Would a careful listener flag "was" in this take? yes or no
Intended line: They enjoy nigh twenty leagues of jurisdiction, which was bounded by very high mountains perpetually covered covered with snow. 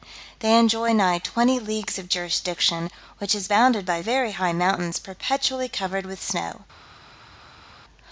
yes